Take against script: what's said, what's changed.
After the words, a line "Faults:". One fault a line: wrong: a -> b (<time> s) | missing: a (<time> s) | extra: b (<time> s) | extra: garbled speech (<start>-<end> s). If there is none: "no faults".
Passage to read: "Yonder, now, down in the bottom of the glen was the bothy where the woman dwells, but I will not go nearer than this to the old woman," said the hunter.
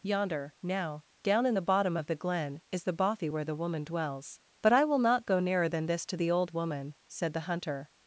"Yonder, now, down in the bottom of the glen is the bothy where the woman dwells, but I will not go nearer than this to the old woman," said the hunter.
Faults:
wrong: was -> is (2.7 s)